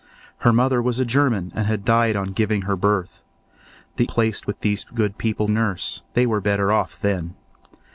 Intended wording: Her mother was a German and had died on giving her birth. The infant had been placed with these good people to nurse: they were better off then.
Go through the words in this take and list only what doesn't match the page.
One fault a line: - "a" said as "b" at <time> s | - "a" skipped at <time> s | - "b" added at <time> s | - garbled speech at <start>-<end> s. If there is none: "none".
- "infant had been" skipped at 4.0 s
- "to" skipped at 5.5 s